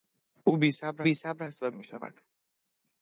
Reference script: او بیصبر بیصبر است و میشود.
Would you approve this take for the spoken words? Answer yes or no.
yes